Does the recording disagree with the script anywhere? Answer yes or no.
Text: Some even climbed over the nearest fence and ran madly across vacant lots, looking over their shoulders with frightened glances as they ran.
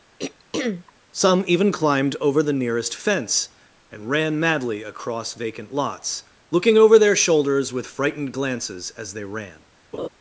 no